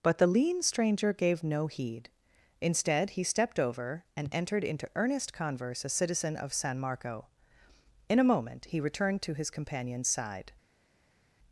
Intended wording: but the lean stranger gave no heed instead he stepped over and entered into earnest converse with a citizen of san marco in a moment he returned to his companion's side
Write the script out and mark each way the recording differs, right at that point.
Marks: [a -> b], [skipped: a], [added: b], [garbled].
but the lean stranger gave no heed instead he stepped over and entered into earnest converse [skipped: with] a citizen of san marco in a moment he returned to his companion's side